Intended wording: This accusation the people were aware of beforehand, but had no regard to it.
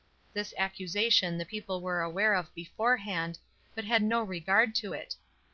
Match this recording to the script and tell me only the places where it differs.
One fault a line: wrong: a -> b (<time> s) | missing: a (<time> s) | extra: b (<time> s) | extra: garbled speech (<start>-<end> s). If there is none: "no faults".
no faults